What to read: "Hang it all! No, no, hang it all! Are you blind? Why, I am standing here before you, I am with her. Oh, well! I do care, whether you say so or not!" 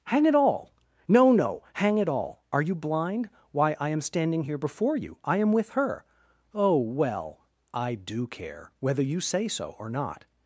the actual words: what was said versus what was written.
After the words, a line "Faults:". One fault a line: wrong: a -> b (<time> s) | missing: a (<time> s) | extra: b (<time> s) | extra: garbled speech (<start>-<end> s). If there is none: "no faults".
"Hang it all! No, no, hang it all! Are you blind? Why, I am standing here before you, I am with her. Oh, well! I do care, whether you say so or not!"
Faults:
no faults